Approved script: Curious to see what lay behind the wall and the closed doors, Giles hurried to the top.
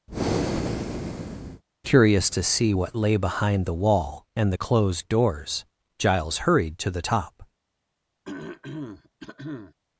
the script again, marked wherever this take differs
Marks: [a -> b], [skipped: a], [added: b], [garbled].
Curious to see what lay behind the wall and the closed doors, Giles hurried to the top.